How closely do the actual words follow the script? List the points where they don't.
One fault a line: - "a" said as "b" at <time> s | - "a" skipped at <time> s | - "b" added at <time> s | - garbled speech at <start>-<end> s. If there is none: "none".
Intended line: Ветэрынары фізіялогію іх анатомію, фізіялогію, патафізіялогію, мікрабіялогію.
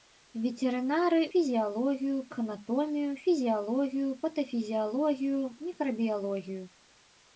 none